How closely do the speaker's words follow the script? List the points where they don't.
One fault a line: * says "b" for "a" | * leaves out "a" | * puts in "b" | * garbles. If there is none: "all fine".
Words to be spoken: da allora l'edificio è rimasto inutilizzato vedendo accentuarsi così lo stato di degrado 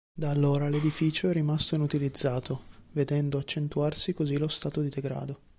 all fine